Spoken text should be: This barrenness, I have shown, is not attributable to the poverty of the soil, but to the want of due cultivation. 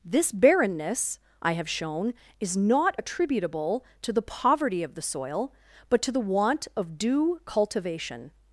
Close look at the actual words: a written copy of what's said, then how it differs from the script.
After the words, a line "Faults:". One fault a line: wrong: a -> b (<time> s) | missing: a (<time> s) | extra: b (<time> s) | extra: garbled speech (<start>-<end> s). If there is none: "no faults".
This barrenness, I have shown, is not attributable to the poverty of the soil, but to the want of due cultivation.
Faults:
no faults